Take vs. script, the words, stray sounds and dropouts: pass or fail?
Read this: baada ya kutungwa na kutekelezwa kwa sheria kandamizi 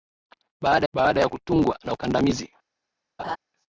fail